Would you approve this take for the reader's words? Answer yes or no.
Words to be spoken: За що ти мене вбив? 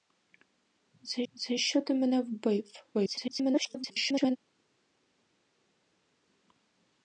no